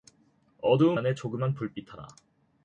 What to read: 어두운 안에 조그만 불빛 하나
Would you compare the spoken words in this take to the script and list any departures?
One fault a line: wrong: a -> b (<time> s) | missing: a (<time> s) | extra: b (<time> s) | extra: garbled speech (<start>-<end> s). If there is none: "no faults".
no faults